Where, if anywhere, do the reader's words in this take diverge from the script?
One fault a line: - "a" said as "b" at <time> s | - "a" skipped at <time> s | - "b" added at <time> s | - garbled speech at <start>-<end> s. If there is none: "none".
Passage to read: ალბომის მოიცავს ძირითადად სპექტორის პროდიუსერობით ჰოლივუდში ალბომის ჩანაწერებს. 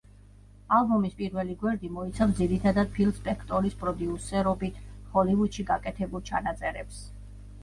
- "პირველი გვერდი" added at 1.2 s
- "ფილ" added at 3.0 s
- "ალბომის" said as "გაკეთებულ" at 5.7 s